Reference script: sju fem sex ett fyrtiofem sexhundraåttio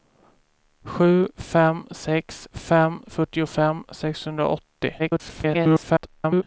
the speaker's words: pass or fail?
fail